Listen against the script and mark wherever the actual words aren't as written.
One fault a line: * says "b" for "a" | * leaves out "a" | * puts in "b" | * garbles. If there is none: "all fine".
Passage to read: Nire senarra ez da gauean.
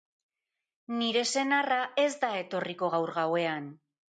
* puts in "etorriko gaur"